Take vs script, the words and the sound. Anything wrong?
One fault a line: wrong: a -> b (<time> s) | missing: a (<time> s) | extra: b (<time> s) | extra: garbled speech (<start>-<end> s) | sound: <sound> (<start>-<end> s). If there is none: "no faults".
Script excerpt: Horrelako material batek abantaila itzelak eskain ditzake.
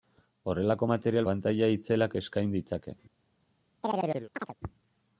missing: batek (1.3 s)
sound: chirp (3.8-4.6 s)